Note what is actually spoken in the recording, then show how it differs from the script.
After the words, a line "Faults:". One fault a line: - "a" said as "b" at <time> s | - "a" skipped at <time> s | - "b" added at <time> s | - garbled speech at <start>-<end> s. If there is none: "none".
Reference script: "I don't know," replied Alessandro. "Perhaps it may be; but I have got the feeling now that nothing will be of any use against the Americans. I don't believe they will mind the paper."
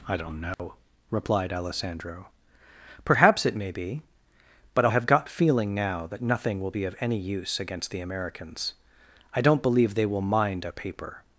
"I don't know," replied Alessandro. "Perhaps it may be; but I have got feeling now that nothing will be of any use against the Americans. I don't believe they will mind a paper."
Faults:
- "the" skipped at 5.3 s
- "the" said as "a" at 10.6 s